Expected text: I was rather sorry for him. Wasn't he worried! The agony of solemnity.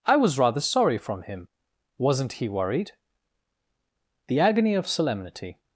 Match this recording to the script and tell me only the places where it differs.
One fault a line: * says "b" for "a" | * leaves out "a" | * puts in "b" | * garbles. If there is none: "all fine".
* says "from" for "for"